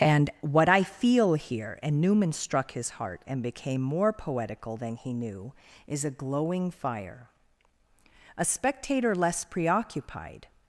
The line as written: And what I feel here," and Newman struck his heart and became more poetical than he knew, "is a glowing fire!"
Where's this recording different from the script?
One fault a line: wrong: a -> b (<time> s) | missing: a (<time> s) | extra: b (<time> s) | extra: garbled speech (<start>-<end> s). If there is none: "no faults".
extra: A spectator less preoccupied (8.4 s)